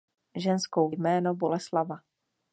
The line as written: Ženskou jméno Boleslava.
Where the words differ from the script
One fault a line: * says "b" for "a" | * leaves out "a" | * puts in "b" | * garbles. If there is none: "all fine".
all fine